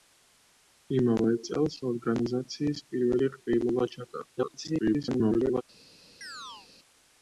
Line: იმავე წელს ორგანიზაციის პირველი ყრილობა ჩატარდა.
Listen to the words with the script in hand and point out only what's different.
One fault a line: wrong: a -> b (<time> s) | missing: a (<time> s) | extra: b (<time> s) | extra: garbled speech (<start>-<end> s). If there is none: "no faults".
extra: garbled speech (4.4-5.6 s)